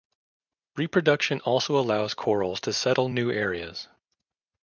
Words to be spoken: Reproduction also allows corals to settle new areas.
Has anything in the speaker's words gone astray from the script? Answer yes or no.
no